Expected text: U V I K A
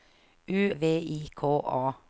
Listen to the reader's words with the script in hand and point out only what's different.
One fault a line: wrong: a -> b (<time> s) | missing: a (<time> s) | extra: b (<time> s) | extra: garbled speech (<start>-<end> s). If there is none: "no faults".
no faults